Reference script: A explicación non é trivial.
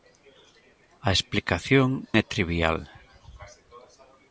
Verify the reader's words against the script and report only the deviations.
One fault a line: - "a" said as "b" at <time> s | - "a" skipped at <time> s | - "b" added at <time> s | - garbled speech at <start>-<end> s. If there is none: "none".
- "non" skipped at 1.9 s